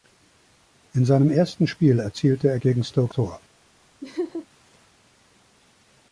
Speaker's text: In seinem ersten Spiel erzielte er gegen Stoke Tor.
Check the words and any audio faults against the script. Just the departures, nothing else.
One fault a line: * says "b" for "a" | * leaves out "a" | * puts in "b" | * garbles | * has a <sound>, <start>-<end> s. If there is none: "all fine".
* has a laugh, 4.0-4.5 s